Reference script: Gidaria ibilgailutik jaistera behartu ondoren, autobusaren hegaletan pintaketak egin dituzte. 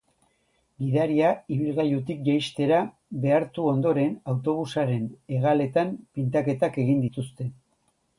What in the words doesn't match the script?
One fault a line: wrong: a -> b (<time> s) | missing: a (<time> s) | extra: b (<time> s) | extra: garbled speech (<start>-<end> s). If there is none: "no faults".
no faults